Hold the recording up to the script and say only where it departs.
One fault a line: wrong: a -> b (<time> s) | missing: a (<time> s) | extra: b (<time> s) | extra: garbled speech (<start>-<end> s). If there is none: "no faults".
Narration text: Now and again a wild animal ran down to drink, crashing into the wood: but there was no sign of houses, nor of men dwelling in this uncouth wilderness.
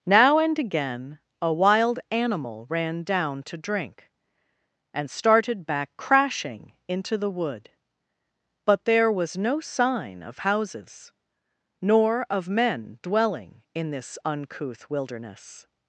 extra: and started back (4.9 s)